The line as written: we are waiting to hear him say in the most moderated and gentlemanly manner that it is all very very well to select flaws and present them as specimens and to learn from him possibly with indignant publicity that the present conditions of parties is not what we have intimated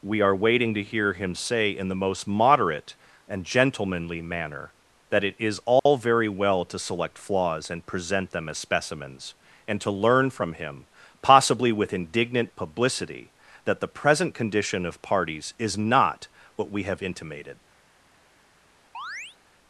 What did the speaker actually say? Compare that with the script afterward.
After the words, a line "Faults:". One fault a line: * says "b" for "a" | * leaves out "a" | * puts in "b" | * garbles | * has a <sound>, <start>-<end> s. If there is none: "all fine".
we are waiting to hear him say in the most moderate and gentlemanly manner that it is all very well to select flaws and present them as specimens and to learn from him possibly with indignant publicity that the present condition of parties is not what we have intimated
Faults:
* says "moderate" for "moderated"
* has a dropout, 5.8-5.9 s
* leaves out "very"
* says "condition" for "conditions"
* has a chirp, 18.9-19.4 s